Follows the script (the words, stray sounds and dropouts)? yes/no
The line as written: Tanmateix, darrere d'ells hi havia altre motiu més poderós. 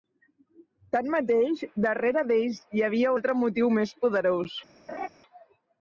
no